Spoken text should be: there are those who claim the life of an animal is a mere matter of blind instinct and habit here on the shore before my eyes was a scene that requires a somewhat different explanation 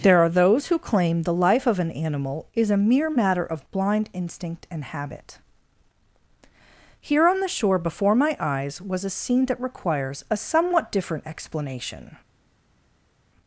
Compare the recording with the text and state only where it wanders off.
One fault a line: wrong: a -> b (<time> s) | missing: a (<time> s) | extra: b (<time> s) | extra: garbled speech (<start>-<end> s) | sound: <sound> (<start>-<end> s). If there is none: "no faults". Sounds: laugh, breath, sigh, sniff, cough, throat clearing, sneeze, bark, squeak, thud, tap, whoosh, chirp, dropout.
no faults